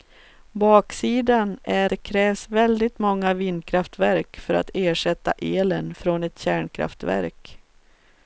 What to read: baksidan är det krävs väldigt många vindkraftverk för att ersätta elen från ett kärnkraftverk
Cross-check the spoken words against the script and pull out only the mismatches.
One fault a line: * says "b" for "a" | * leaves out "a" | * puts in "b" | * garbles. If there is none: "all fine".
all fine